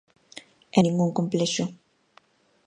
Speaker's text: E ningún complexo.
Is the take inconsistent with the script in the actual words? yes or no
no